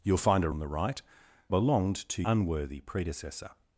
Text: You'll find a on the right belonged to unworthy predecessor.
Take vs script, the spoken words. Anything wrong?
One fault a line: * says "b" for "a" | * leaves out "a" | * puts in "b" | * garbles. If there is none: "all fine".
all fine